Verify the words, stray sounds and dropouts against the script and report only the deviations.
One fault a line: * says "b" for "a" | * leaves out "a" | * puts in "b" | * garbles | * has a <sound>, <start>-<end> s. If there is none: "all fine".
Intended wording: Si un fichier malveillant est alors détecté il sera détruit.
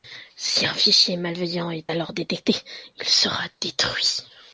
all fine